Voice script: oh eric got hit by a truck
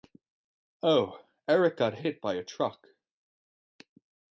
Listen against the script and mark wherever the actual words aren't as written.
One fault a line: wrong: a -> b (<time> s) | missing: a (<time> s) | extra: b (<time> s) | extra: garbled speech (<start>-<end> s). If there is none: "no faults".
no faults